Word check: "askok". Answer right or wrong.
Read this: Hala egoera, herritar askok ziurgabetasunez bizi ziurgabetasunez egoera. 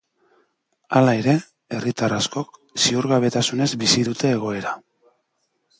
right